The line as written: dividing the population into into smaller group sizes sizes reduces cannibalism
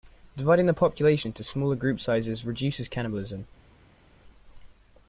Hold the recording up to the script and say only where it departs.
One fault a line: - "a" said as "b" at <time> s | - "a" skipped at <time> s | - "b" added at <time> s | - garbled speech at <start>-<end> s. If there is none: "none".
- "into" skipped at 1.4 s
- "sizes" skipped at 2.4 s